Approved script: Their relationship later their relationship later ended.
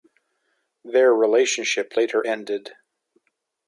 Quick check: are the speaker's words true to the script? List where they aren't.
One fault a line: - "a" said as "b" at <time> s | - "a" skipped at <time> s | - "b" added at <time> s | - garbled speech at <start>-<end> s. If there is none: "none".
- "their relationship later" skipped at 2.2 s